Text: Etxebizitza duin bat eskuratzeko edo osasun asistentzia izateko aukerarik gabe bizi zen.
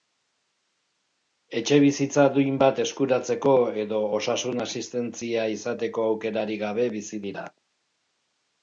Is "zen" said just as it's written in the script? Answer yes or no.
no